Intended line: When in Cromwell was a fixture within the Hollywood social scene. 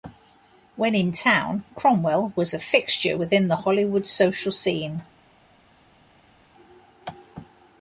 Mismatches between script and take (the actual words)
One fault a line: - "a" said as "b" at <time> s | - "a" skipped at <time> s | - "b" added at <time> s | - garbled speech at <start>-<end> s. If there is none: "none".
- "town" added at 1.1 s